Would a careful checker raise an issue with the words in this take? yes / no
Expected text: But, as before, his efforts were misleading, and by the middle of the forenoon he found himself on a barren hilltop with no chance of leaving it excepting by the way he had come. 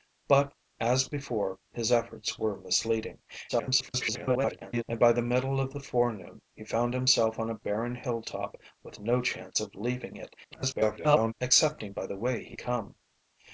yes